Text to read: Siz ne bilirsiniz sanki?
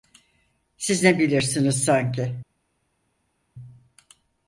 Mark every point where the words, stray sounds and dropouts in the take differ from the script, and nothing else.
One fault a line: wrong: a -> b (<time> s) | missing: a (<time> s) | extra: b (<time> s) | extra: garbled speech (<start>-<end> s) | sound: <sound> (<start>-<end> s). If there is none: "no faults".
no faults